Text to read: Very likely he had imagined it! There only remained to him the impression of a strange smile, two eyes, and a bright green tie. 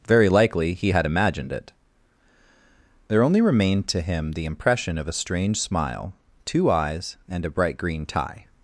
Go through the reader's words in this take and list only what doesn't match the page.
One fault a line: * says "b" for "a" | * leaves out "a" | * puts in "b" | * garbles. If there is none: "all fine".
all fine